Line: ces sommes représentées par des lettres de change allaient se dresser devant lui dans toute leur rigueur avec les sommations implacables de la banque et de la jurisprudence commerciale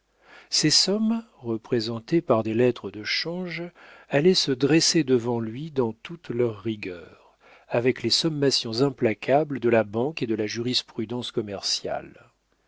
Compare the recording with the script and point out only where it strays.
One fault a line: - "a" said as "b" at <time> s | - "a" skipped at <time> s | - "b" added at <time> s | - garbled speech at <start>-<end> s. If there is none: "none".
none